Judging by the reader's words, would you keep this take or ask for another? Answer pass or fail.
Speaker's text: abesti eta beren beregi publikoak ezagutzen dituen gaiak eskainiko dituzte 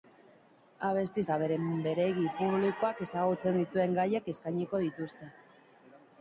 pass